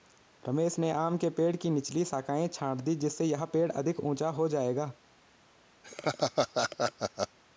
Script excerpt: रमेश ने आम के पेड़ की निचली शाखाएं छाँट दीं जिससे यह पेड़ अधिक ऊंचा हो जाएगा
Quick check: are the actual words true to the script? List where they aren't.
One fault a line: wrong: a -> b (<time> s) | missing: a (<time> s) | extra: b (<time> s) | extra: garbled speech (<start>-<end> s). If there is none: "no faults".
no faults